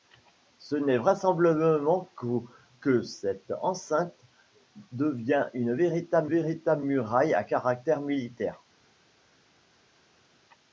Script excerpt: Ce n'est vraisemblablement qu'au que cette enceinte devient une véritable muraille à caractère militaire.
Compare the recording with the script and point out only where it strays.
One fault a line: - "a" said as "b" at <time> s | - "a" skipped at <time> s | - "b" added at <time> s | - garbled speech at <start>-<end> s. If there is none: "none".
- "véritable" added at 6.2 s